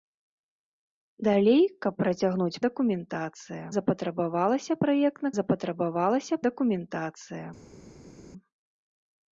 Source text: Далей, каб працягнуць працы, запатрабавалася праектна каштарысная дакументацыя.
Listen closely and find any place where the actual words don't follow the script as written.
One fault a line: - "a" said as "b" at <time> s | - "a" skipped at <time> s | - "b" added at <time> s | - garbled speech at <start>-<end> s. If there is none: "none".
- "працы" said as "дакументацыя" at 2.7 s
- "каштарысная" said as "запатрабавалася" at 5.4 s